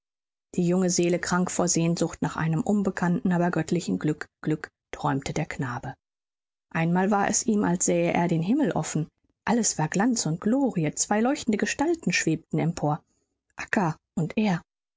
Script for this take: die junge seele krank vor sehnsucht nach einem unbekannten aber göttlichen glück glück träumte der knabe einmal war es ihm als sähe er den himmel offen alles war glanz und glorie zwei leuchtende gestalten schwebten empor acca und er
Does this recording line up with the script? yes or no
yes